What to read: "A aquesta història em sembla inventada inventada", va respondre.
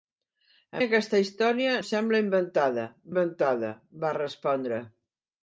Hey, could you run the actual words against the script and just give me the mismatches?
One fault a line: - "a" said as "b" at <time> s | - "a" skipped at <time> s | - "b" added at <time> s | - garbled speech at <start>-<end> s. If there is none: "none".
none